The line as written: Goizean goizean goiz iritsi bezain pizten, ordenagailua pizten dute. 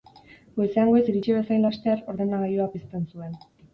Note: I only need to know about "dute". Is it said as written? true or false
false